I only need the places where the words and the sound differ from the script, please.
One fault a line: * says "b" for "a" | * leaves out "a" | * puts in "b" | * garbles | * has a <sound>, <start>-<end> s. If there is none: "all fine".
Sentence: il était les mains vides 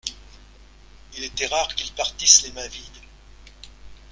* puts in "rare qu'ils partissent"